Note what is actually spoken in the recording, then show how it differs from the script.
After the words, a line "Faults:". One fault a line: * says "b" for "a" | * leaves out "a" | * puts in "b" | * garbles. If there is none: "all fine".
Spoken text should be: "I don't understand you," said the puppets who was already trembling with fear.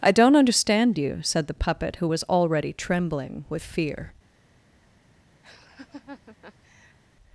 "I don't understand you," said the puppet who was already trembling with fear.
Faults:
* says "puppet" for "puppets"